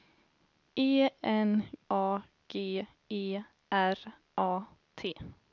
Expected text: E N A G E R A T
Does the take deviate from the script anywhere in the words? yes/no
no